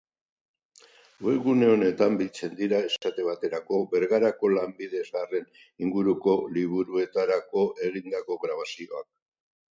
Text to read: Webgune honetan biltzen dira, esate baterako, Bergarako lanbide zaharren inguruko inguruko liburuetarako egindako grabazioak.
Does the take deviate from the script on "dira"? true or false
false